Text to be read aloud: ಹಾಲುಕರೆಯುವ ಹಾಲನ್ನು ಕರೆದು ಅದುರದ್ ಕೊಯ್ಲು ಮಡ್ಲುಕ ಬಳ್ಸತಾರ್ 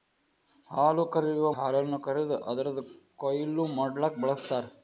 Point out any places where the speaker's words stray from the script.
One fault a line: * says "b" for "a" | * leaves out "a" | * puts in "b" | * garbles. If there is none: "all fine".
all fine